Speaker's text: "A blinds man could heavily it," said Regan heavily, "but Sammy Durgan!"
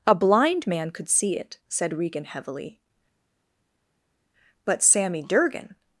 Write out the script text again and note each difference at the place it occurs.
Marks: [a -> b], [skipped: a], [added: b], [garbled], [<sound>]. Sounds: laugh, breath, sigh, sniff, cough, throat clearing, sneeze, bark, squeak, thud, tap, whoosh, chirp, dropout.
"A [blinds -> blind] man could [heavily -> see] it," said Regan heavily, "but Sammy Durgan!"